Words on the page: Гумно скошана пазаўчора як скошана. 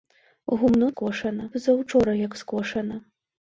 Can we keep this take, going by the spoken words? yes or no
yes